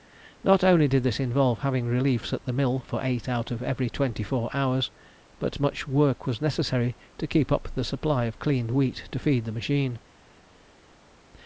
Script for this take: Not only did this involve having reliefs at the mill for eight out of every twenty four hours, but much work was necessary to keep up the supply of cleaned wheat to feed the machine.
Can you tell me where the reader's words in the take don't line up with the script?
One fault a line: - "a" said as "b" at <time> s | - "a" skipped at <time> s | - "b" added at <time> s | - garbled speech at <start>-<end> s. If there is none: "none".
none